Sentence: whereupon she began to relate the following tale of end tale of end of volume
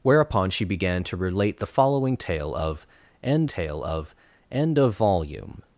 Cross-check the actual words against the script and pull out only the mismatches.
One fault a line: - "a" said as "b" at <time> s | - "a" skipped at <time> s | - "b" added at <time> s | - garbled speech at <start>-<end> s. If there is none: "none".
none